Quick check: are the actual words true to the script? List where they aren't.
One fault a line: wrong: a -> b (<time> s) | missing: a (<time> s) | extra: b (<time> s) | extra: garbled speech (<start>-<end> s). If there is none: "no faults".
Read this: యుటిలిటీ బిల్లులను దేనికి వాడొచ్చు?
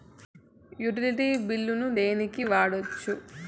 no faults